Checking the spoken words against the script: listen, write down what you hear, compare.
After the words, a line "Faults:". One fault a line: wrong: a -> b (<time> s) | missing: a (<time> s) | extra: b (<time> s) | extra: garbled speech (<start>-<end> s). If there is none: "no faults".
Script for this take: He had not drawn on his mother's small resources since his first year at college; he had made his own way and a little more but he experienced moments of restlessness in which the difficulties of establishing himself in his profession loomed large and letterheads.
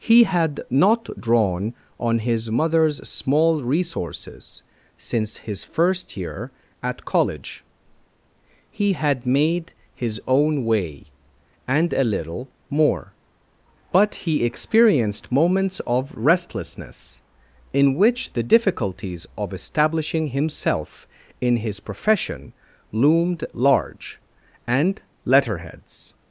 He had not drawn on his mother's small resources since his first year at college; he had made his own way and a little more but he experienced moments of restlessness in which the difficulties of establishing himself in his profession loomed large and letterheads.
Faults:
no faults